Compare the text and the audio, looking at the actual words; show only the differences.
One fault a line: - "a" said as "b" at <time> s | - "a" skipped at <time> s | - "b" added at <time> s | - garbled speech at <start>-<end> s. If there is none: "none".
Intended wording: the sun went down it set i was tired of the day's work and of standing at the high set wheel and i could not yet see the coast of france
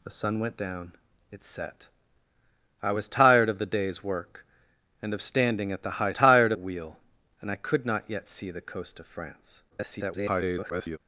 - "set" said as "tired" at 6.1 s
- garbled speech at 9.7-11.0 s